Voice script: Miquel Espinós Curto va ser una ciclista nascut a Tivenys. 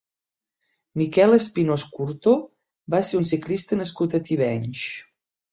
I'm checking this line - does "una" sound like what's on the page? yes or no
no